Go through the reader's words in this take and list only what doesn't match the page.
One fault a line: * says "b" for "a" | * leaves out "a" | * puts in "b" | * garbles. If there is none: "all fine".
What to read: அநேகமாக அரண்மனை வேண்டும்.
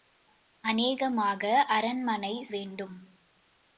all fine